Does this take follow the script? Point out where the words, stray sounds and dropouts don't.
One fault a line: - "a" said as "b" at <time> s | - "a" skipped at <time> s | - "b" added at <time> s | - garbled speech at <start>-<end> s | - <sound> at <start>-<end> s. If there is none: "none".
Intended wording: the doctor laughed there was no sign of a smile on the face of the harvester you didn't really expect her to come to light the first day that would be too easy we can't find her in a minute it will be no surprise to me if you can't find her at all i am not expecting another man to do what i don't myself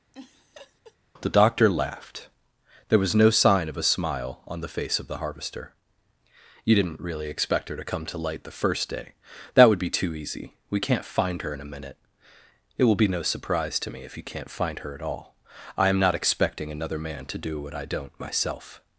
- laugh at 0.1-1.0 s